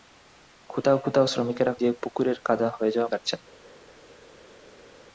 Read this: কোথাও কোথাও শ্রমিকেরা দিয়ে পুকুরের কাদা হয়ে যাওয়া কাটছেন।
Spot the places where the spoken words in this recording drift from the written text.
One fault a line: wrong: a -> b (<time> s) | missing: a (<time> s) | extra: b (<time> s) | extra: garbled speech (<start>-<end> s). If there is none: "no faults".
no faults